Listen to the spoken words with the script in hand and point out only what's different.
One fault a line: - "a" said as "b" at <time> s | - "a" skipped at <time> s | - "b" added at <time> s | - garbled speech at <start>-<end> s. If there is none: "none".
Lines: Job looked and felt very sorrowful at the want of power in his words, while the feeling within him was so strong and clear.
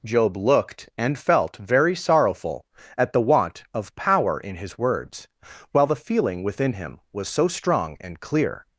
none